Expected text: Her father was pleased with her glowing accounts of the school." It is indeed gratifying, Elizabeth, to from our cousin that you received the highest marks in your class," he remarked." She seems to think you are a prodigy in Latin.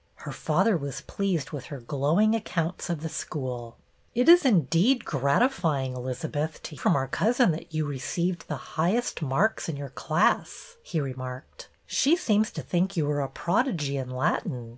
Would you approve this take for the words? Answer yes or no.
yes